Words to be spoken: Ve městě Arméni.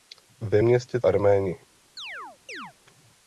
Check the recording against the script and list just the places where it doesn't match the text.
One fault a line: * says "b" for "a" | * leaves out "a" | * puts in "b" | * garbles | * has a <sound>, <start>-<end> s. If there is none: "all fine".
* has a chirp, 2.0-2.7 s